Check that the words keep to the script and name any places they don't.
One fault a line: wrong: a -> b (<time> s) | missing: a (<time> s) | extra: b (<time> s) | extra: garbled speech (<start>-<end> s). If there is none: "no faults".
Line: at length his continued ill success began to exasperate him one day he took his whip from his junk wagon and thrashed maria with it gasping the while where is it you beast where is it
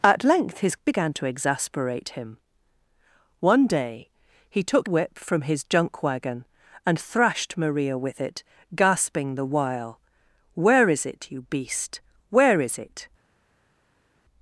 missing: continued ill success (0.8 s)
missing: his (4.9 s)